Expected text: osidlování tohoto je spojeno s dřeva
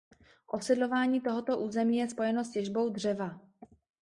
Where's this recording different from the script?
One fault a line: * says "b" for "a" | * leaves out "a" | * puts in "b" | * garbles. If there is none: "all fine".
* puts in "území"
* puts in "těžbou"